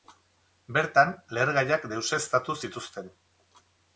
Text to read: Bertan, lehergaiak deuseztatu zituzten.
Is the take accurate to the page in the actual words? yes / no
yes